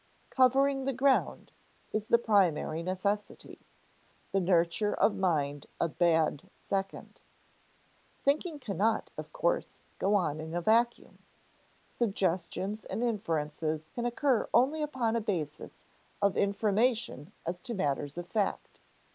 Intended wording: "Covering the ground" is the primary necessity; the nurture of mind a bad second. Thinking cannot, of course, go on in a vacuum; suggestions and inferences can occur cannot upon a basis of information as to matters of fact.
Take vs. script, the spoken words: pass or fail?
fail